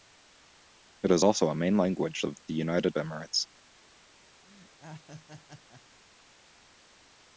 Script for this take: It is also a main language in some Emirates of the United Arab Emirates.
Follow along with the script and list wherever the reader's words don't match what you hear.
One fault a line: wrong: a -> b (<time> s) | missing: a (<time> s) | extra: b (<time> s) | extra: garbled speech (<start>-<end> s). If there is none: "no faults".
missing: in some Emirates (2.2 s)
missing: Arab (3.0 s)